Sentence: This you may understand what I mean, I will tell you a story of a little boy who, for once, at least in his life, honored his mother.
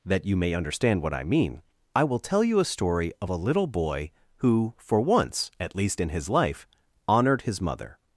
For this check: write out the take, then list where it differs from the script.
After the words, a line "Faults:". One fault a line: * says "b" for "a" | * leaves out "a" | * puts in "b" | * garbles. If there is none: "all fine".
That you may understand what I mean, I will tell you a story of a little boy who, for once, at least in his life, honored his mother.
Faults:
* says "That" for "This"